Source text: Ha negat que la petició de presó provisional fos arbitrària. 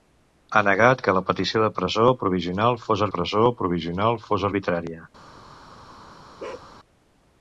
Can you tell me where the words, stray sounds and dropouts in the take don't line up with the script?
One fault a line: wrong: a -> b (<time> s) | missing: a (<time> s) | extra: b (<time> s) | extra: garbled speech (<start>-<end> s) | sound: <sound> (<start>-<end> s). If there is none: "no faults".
extra: presó provisional fos (3.1 s)
sound: bark (6.4-6.7 s)